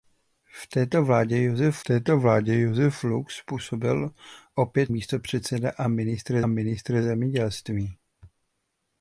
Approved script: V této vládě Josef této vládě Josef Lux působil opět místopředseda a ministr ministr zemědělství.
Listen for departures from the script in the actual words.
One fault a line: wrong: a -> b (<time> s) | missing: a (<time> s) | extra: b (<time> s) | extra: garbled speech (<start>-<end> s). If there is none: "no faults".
no faults